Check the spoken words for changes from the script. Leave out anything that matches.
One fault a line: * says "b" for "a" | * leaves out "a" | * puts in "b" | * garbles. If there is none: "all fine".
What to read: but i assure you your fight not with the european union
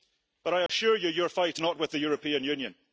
all fine